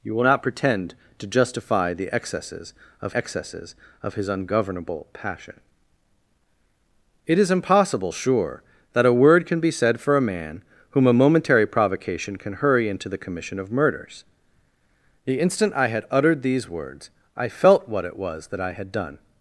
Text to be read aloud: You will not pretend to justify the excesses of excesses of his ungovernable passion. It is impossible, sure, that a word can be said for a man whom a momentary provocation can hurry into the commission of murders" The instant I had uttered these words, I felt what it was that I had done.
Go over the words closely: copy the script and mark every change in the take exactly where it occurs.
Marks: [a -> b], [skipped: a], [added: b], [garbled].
You will not pretend to justify the excesses of excesses of his ungovernable passion. It is impossible, sure, that a word can be said for a man whom a momentary provocation can hurry into the commission of murders" The instant I had uttered these words, I felt what it was that I had done.